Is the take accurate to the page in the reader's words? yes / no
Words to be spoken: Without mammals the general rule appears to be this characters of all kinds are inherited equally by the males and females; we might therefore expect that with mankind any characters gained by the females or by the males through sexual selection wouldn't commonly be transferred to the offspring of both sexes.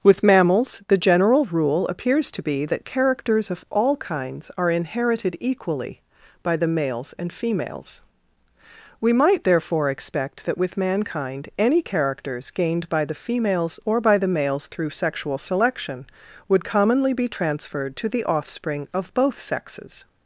no